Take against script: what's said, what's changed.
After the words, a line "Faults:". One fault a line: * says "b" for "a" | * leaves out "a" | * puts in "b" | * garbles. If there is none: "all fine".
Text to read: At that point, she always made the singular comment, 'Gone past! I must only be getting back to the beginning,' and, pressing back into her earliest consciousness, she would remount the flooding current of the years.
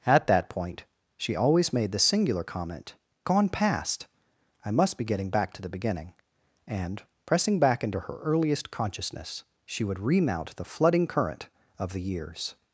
At that point, she always made the singular comment, 'Gone past! I must be getting back to the beginning,' and, pressing back into her earliest consciousness, she would remount the flooding current of the years.
Faults:
* leaves out "only"